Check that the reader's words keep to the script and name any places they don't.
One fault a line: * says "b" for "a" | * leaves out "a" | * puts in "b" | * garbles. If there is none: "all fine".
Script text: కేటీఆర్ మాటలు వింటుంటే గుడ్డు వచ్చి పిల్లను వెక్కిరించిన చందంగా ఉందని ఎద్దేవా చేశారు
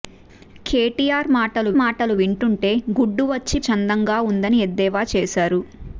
* puts in "మాటలు"
* leaves out "పిల్లను వెక్కిరించిన"